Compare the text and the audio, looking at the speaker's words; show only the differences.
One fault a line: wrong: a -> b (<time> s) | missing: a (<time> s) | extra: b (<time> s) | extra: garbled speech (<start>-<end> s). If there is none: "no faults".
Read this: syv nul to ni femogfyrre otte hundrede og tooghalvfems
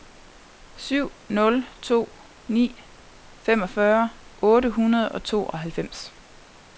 no faults